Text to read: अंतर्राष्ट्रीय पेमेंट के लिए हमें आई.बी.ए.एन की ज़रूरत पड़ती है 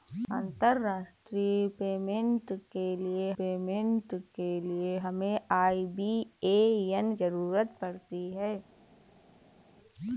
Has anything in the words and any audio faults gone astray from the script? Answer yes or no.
yes